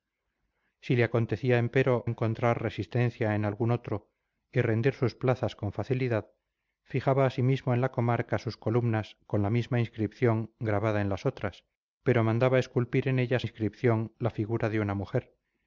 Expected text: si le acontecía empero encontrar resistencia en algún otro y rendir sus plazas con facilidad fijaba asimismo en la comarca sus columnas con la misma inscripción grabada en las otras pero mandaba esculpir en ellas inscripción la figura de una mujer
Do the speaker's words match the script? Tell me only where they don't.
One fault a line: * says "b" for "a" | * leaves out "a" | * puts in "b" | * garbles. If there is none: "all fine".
all fine